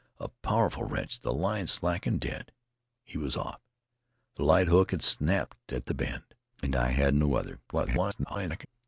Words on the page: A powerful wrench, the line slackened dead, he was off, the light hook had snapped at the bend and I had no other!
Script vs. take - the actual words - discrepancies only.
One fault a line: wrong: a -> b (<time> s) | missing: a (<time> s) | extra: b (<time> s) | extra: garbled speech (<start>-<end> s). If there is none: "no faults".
extra: garbled speech (7.7-8.7 s)